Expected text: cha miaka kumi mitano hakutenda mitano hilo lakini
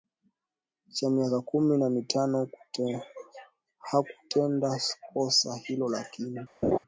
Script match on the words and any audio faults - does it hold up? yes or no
no